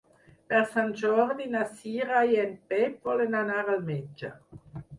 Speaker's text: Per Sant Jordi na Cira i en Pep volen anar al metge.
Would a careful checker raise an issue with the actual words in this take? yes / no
no